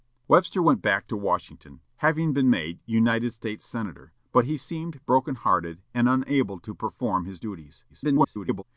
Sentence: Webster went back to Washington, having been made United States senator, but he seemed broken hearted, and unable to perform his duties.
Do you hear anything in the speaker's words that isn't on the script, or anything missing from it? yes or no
yes